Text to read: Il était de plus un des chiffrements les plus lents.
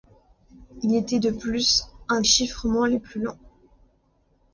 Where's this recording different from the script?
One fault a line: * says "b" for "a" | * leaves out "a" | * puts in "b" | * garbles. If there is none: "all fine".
* leaves out "des"